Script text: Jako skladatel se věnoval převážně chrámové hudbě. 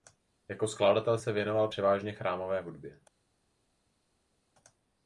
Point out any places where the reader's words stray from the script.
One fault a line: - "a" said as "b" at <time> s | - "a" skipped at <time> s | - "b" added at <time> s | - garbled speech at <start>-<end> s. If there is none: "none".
none